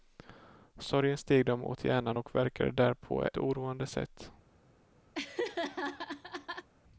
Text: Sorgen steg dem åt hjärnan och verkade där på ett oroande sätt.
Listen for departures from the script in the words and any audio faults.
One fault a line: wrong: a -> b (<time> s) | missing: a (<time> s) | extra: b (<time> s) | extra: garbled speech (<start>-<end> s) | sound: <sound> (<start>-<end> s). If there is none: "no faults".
missing: ett (3.3 s)
sound: laugh (5.1-6.7 s)